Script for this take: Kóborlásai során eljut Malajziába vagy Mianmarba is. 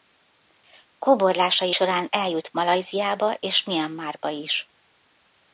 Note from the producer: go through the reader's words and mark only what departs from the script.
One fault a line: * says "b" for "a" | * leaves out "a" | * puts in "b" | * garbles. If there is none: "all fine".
* says "és" for "vagy"